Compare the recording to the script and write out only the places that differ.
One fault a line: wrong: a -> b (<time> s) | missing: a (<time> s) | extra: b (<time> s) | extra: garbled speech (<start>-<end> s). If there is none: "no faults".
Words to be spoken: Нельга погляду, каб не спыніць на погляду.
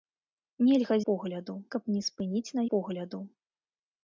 no faults